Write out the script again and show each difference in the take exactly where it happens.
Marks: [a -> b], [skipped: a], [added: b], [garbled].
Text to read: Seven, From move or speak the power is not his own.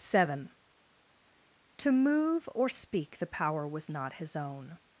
Seven, [From -> To] move or speak the power [is -> was] not his own.